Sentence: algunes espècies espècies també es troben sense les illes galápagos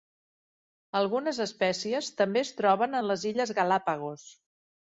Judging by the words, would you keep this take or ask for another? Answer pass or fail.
fail